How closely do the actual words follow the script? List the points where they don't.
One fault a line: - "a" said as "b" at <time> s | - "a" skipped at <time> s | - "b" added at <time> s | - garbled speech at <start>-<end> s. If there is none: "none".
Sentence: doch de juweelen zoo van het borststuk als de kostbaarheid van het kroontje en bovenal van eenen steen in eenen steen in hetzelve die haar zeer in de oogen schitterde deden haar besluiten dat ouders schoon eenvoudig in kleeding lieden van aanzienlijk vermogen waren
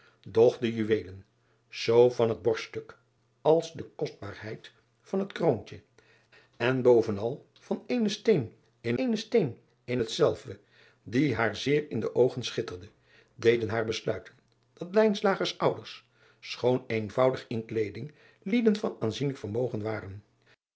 none